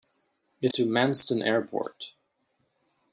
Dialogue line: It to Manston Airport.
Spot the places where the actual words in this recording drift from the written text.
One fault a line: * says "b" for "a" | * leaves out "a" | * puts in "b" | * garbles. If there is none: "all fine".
all fine